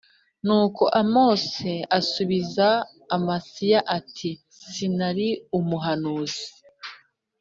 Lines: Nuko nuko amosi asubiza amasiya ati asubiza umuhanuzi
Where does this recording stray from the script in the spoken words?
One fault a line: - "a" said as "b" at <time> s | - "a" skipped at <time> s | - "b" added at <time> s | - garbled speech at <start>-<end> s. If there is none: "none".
- "nuko" skipped at 0.8 s
- "asubiza" said as "sinari" at 4.7 s